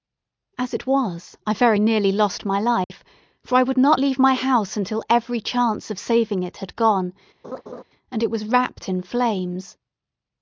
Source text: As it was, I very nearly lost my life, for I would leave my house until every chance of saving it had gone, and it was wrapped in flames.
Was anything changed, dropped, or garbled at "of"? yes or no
no